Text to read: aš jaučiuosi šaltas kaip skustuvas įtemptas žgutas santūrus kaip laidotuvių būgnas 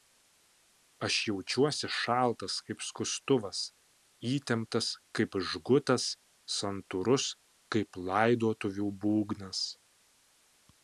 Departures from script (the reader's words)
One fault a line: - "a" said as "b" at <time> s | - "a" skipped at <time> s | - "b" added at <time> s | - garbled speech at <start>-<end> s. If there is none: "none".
- "kaip" added at 5.2 s